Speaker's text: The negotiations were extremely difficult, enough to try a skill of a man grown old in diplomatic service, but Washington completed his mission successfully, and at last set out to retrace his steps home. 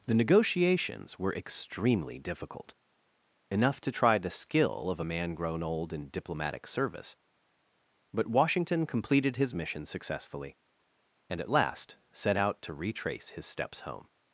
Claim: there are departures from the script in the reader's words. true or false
true